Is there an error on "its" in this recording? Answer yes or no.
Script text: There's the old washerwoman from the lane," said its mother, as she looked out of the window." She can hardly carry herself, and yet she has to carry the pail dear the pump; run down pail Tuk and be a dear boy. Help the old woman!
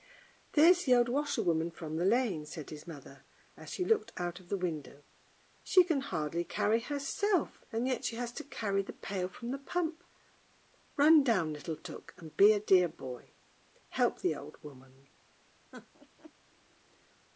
yes